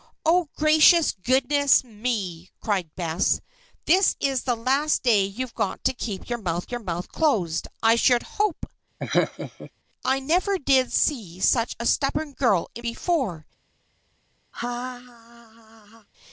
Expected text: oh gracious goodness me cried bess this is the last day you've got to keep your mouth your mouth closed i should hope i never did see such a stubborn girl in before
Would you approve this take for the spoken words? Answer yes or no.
yes